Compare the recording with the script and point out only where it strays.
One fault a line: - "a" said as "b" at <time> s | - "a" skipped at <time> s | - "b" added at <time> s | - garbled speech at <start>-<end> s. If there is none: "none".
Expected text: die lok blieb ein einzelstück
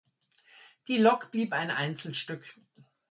none